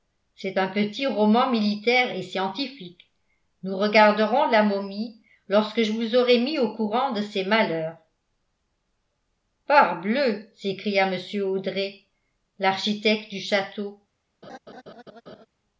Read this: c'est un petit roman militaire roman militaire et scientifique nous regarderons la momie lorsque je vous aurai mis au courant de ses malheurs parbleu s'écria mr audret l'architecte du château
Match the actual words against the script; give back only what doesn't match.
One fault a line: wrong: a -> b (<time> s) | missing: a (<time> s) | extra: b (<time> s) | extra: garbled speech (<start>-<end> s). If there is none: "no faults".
missing: roman militaire (2.1 s)